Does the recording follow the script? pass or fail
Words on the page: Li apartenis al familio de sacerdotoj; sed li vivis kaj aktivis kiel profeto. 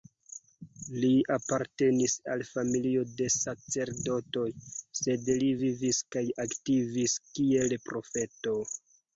pass